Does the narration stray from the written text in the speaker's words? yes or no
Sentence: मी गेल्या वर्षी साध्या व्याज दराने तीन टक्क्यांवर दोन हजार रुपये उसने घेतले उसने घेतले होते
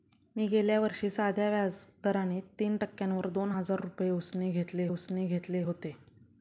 no